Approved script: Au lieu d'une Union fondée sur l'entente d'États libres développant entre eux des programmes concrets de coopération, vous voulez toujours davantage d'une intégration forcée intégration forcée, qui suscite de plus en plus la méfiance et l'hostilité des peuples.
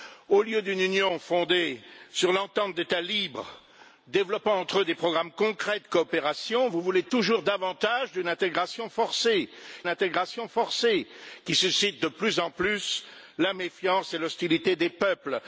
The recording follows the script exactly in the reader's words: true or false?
true